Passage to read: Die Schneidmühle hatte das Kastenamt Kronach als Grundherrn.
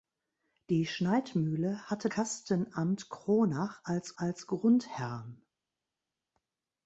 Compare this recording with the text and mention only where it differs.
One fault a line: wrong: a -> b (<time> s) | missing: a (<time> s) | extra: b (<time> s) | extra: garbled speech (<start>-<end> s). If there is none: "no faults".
missing: das (2.1 s)
extra: als (4.2 s)